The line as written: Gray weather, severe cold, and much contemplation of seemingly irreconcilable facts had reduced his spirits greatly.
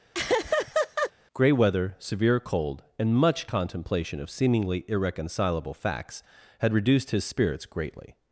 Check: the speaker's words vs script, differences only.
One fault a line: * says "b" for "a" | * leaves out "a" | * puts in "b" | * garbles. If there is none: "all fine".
all fine